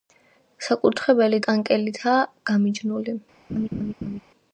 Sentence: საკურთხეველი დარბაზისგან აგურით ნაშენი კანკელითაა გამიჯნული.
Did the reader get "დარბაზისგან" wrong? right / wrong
wrong